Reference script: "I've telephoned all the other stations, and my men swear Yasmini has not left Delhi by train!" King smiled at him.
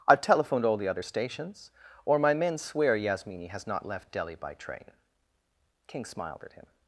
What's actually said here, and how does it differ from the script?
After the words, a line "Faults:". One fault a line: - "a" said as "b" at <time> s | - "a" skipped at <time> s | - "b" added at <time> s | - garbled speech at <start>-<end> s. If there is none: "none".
"I've telephoned all the other stations, or my men swear Yasmini has not left Delhi by train!" King smiled at him.
Faults:
- "and" said as "or" at 2.0 s